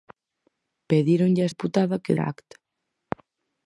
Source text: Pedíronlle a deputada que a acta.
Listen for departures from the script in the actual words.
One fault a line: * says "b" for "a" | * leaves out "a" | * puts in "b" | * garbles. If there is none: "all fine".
all fine